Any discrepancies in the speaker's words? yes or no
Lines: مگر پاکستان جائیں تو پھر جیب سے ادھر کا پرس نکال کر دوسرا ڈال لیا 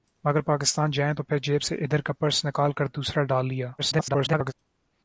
yes